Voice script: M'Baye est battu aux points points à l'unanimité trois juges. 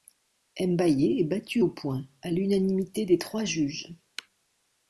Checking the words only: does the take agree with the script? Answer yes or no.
no